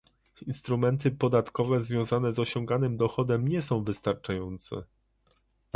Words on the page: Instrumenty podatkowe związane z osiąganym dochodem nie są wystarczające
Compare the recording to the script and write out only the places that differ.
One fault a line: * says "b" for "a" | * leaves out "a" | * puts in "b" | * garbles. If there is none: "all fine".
all fine